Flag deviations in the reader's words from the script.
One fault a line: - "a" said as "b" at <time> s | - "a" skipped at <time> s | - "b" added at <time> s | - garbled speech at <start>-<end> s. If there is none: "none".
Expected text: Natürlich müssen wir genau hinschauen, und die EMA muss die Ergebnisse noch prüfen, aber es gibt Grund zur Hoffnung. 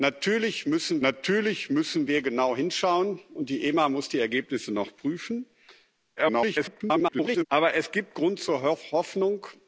- "natürlich müssen" added at 1.0 s
- garbled speech at 6.2-7.5 s